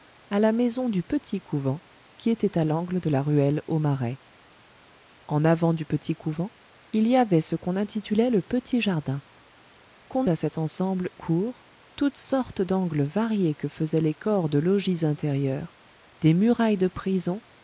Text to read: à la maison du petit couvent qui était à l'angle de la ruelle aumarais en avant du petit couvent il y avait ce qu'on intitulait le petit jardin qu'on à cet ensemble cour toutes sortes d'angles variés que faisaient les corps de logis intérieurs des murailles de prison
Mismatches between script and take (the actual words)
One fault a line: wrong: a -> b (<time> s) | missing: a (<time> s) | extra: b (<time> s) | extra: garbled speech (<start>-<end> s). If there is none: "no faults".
no faults